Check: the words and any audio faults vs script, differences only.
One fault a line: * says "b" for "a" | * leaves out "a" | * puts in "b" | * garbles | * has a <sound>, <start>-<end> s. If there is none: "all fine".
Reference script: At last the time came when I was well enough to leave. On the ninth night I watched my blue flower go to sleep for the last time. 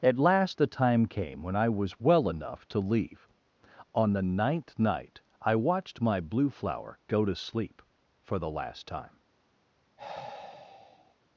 * has a sigh, 10.0-11.2 s